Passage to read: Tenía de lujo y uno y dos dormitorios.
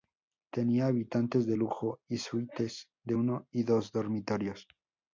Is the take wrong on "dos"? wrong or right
right